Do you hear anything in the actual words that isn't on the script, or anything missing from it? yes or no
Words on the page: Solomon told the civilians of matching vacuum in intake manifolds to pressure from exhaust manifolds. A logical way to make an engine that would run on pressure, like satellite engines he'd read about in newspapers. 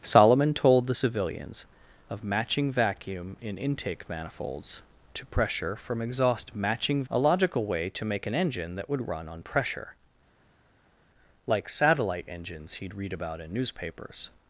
yes